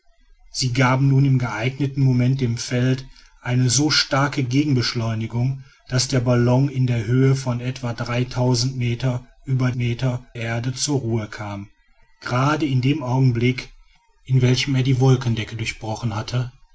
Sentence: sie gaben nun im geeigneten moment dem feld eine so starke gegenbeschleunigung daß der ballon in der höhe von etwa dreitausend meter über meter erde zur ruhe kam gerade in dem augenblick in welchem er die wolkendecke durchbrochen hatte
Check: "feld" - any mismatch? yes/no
no